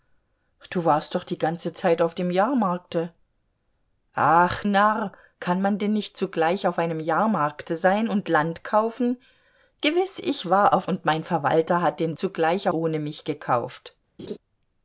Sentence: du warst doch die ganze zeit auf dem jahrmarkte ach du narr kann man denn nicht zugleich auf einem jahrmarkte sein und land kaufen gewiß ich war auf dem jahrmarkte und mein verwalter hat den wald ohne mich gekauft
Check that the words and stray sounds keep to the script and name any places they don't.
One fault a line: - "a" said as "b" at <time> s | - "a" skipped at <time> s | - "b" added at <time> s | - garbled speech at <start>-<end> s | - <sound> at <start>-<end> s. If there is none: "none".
- "du" skipped at 4.6 s
- "dem jahrmarkte" skipped at 10.9 s
- "wald" said as "zugleich" at 12.2 s
- laugh at 14.2-14.4 s